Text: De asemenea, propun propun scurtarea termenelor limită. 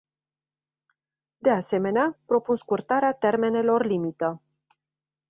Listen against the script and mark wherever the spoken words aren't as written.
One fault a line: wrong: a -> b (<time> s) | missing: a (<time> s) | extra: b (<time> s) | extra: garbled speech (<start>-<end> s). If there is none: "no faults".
missing: propun (2.5 s)